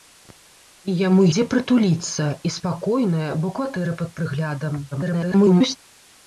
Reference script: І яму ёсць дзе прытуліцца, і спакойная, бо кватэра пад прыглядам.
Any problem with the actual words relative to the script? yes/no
yes